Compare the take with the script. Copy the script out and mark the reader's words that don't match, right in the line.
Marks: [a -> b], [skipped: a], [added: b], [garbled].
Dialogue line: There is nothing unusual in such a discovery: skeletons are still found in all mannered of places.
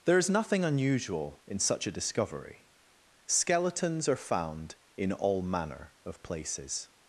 There is nothing unusual in such a discovery: skeletons are [skipped: still] found in all [mannered -> manner] of places.